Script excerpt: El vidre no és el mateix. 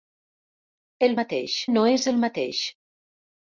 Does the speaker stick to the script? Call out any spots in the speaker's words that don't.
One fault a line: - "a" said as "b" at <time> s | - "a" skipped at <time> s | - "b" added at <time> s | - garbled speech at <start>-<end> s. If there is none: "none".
- "vidre" said as "mateix" at 1.2 s